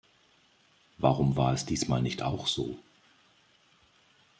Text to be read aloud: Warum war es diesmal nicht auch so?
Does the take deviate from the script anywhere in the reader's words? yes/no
no